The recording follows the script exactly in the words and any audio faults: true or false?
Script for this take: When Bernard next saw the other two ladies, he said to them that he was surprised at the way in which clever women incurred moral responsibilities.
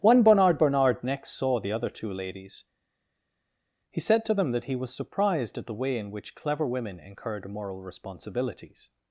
false